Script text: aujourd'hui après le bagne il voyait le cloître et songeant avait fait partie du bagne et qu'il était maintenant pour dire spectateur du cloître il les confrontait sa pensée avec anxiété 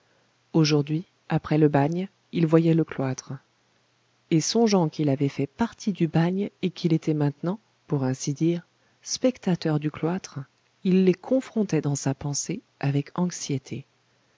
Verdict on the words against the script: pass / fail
fail